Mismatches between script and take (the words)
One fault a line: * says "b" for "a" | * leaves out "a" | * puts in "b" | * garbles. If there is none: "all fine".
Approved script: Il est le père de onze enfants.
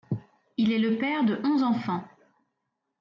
all fine